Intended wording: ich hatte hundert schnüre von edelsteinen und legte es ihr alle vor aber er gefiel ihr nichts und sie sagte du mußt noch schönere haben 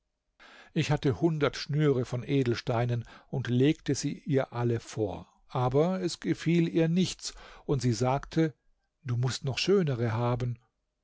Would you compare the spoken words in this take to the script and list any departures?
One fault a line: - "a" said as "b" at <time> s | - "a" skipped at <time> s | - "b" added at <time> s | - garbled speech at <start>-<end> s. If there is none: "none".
- "es" said as "sie" at 3.9 s
- "er" said as "es" at 6.0 s